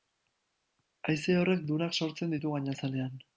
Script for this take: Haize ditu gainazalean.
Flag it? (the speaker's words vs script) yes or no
yes